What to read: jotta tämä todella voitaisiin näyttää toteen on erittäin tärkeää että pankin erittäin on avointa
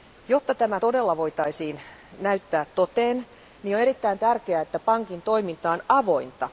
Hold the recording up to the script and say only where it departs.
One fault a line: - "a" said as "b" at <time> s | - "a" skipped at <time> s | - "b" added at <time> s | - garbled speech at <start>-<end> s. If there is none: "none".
- "erittäin" said as "toiminta" at 5.2 s